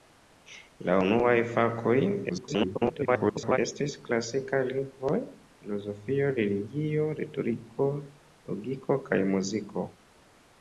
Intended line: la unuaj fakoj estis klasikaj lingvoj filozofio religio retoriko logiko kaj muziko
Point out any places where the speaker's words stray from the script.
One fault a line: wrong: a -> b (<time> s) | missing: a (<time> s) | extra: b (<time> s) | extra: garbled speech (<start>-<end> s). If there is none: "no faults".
extra: garbled speech (2.3-3.6 s)